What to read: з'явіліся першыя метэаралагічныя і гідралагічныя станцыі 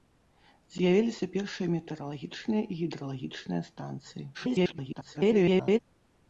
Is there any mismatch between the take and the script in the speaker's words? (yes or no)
yes